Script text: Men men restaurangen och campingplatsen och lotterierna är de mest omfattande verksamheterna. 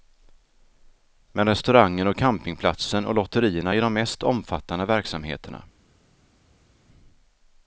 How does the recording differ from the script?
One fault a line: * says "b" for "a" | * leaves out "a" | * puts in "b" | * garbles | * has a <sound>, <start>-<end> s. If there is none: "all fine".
* leaves out "men"